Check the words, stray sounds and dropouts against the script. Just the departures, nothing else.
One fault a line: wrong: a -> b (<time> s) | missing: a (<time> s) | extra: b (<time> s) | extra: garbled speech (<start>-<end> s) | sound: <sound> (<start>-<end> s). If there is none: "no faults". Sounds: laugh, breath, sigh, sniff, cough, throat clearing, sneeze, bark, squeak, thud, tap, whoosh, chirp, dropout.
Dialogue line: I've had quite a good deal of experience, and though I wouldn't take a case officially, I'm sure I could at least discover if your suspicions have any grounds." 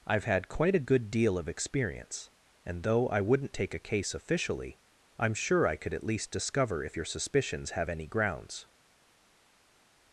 no faults